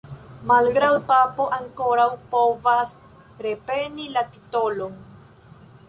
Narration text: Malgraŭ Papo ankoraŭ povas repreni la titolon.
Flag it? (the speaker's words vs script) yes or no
no